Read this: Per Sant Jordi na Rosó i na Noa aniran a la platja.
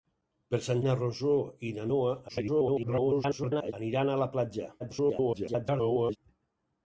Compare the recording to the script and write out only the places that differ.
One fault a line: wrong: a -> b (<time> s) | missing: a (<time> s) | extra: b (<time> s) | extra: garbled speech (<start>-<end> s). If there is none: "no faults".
missing: Jordi (0.8 s)
extra: garbled speech (2.3-3.7 s)
extra: garbled speech (4.8-6.2 s)